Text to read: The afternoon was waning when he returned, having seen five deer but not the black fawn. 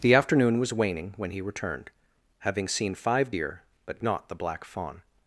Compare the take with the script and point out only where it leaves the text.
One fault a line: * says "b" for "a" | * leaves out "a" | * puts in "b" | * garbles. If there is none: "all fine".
all fine